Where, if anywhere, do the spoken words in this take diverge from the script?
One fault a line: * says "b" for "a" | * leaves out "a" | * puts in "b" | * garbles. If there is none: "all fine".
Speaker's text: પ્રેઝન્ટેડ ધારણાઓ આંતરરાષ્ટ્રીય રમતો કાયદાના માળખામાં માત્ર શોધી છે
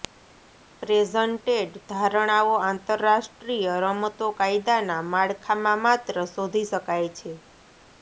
* puts in "શકાય"